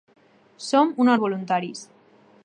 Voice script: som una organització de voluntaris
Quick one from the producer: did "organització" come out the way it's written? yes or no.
no